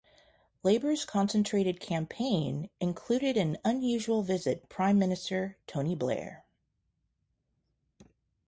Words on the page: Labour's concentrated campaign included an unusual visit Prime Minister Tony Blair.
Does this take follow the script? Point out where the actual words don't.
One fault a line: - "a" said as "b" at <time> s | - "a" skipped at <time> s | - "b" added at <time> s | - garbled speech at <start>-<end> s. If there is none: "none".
none